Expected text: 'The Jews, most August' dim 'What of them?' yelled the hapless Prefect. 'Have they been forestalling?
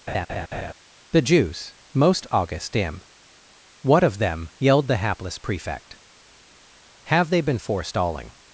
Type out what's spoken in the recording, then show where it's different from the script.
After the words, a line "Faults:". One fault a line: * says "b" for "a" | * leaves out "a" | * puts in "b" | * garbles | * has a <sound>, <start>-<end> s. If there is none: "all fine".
'The Jews, most August' dim 'What of them?' yelled the hapless Prefect. 'Have they been forestalling?
Faults:
* has a laugh, 0.1-0.7 s